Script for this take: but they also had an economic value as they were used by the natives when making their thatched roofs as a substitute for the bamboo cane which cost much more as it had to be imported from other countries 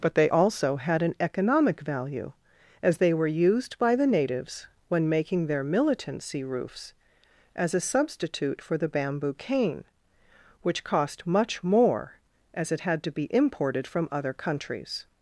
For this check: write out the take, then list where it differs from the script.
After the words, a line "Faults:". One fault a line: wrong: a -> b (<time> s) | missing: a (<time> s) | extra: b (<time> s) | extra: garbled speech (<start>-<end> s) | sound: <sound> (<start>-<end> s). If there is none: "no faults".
but they also had an economic value as they were used by the natives when making their militancy roofs as a substitute for the bamboo cane which cost much more as it had to be imported from other countries
Faults:
wrong: thatched -> militancy (5.6 s)